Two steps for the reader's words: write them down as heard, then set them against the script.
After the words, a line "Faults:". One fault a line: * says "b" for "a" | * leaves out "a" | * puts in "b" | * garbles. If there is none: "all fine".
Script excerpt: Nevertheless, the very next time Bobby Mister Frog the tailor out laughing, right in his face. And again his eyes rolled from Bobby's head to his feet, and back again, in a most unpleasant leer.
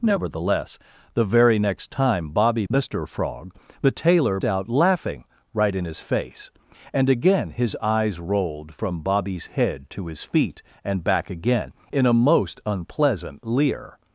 Nevertheless, the very next time Bobby Mister Frog the tailor out laughing, right in his face. And again his eyes rolled from Bobby's head to his feet, and back again, in a most unpleasant leer.
Faults:
all fine